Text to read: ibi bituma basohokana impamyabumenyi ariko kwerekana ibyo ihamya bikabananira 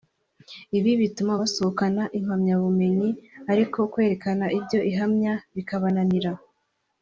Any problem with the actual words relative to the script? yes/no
no